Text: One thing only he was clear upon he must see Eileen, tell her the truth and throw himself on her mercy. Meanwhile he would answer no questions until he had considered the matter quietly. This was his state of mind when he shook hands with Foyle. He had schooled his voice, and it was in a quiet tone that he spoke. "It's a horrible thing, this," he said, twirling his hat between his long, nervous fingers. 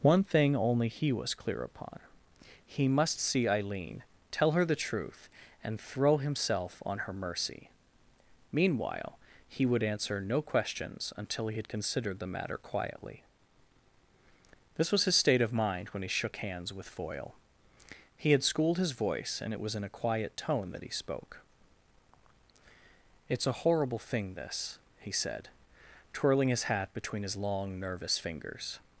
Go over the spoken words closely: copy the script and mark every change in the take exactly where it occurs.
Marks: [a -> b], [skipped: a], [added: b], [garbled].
One thing only he was clear upon he must see Eileen, tell her the truth and throw himself on her mercy. Meanwhile he would answer no questions until he had considered the matter quietly. This was his state of mind when he shook hands with Foyle. He had schooled his voice, and it was in a quiet tone that he spoke. "It's a horrible thing, this," he said, twirling his hat between his long, nervous fingers.